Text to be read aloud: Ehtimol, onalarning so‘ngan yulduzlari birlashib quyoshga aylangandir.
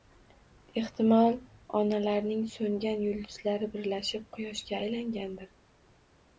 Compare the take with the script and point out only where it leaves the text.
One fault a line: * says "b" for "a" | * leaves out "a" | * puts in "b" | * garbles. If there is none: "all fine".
all fine